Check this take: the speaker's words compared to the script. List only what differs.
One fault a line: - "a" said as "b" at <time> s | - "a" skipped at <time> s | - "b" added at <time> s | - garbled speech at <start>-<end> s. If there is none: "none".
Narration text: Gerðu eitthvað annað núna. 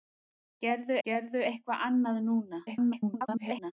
- "gerðu" added at 1.1 s
- garbled speech at 2.7-3.7 s